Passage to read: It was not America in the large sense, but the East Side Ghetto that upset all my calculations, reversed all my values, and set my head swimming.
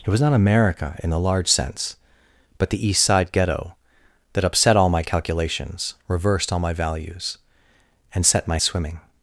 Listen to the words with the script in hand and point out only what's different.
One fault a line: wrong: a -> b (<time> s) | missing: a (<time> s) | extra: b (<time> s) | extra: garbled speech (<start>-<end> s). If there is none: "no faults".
missing: head (8.6 s)